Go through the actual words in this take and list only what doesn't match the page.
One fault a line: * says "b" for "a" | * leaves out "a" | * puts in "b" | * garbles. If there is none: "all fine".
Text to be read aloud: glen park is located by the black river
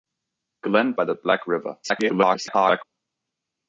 * leaves out "park is located"
* garbles